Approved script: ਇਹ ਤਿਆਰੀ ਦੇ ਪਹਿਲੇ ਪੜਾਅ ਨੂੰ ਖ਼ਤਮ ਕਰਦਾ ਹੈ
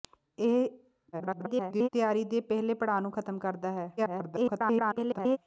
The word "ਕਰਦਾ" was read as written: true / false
true